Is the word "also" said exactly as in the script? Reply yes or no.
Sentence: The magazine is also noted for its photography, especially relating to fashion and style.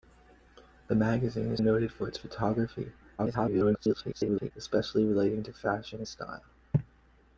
no